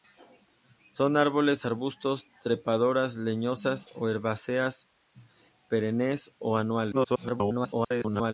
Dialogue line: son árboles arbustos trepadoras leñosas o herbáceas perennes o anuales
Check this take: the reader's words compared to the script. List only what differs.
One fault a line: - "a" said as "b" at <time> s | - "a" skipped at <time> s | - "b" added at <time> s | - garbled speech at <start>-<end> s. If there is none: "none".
- garbled speech at 6.9-8.3 s